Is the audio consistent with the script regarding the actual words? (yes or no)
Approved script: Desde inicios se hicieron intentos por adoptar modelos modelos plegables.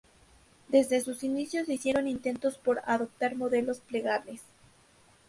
no